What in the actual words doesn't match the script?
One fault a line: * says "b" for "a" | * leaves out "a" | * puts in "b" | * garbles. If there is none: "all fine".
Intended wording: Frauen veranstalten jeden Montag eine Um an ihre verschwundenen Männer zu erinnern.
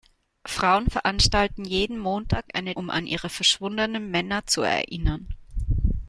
all fine